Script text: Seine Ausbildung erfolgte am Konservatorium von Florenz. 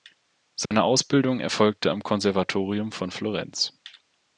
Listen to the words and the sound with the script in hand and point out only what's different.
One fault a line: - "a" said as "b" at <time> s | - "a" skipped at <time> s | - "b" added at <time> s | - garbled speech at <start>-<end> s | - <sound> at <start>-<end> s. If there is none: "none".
- dropout at 0.7-0.7 s